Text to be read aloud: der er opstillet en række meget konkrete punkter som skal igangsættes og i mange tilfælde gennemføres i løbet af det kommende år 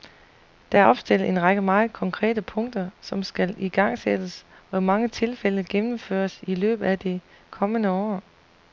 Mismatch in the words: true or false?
false